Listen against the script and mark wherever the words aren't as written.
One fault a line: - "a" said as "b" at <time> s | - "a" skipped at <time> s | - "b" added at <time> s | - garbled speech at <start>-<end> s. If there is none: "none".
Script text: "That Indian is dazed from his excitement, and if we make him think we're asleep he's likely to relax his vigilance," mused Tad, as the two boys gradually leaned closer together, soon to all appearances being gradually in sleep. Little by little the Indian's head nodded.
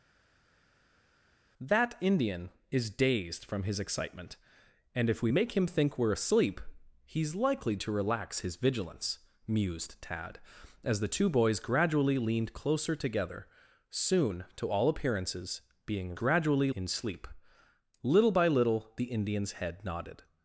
none